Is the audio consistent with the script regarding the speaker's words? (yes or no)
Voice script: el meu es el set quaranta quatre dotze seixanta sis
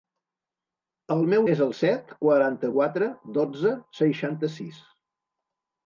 yes